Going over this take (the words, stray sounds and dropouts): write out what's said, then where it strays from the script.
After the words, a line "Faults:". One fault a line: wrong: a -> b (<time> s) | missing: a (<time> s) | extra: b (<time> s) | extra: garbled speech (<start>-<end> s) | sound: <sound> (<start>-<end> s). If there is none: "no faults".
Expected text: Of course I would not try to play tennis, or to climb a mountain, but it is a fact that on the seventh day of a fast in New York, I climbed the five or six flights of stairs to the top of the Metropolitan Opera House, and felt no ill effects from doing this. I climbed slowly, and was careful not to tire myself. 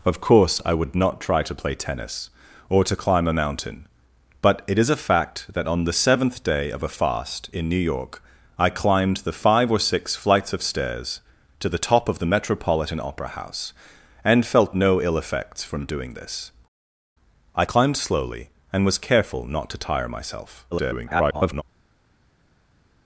Of course I would not try to play tennis, or to climb a mountain, but it is a fact that on the seventh day of a fast in New York, I climbed the five or six flights of stairs to the top of the Metropolitan Opera House, and felt no ill effects from doing this. I climbed slowly, and was careful not to tire myself. [garbled]
Faults:
extra: garbled speech (20.7-21.6 s)